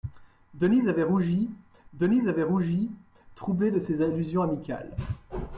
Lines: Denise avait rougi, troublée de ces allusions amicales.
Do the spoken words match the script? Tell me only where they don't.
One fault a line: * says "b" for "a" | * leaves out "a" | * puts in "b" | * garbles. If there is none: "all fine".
* puts in "denise avait rougi"